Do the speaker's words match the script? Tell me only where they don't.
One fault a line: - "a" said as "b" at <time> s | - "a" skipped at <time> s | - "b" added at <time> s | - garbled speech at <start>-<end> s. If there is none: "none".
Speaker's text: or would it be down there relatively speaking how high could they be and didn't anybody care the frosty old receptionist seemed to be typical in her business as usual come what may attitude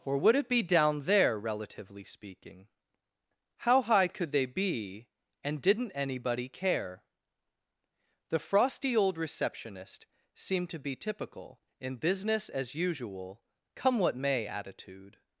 - "her" skipped at 12.0 s